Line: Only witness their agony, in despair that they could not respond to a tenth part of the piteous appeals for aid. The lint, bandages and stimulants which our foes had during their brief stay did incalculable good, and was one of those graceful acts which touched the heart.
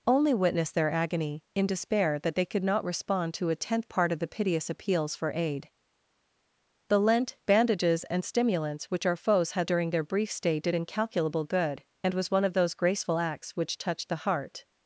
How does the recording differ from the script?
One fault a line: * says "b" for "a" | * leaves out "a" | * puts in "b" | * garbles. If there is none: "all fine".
all fine